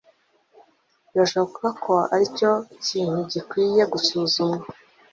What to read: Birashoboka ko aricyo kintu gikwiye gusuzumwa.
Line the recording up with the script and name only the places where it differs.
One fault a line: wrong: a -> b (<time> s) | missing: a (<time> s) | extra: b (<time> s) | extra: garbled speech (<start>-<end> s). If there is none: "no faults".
no faults